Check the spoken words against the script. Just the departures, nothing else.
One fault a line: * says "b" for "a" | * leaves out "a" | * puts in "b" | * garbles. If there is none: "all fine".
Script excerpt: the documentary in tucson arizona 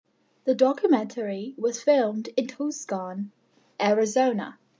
* puts in "was filmed"